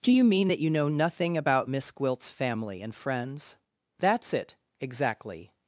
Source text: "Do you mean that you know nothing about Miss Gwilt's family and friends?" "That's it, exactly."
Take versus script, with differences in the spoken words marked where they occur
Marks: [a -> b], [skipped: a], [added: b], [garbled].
"Do you mean that you know nothing about Miss Gwilt's family and friends?" "That's it, exactly."